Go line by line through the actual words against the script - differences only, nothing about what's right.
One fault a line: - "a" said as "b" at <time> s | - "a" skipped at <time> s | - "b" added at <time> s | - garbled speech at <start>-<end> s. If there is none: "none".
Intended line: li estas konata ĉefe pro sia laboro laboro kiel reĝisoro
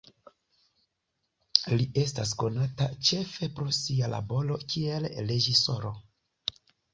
- "laboro" skipped at 4.6 s